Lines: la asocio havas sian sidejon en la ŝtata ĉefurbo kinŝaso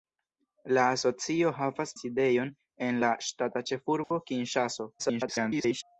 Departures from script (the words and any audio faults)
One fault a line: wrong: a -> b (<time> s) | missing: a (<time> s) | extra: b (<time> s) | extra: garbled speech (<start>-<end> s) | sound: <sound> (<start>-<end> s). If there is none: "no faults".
missing: sian (1.9 s)
sound: dropout (4.0-4.1 s)
extra: garbled speech (5.0-5.8 s)